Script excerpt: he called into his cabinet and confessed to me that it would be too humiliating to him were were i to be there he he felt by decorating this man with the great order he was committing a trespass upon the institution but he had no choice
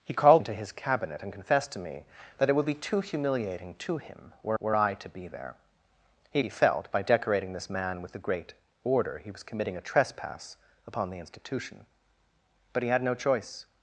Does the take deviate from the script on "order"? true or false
false